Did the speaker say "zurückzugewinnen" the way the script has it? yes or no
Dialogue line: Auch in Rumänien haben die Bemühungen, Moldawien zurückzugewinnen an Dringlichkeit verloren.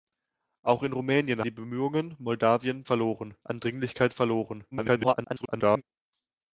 no